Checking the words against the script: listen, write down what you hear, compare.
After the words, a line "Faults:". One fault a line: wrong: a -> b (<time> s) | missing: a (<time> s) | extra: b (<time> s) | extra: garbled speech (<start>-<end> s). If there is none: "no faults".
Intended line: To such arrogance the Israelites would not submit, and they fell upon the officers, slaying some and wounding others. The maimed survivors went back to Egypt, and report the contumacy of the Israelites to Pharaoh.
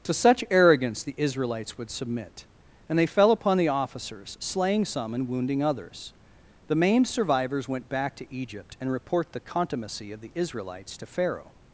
To such arrogance the Israelites would submit, and they fell upon the officers, slaying some and wounding others. The maimed survivors went back to Egypt, and report the contumacy of the Israelites to Pharaoh.
Faults:
missing: not (1.9 s)